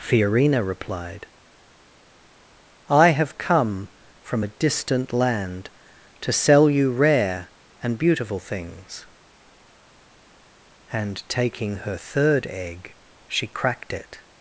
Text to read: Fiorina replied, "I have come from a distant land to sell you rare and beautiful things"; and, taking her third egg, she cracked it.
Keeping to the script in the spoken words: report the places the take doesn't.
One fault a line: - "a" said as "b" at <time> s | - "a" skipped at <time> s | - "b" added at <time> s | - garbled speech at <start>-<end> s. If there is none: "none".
none